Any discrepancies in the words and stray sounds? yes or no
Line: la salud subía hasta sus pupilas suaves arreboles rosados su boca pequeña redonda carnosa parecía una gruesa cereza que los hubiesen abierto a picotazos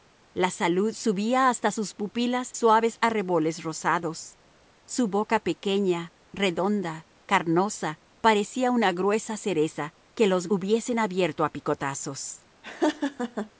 yes